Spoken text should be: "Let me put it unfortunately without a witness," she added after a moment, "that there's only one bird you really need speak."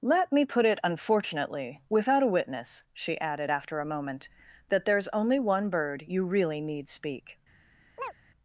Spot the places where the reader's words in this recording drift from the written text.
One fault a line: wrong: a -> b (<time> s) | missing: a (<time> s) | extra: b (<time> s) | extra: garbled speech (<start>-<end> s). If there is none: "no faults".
no faults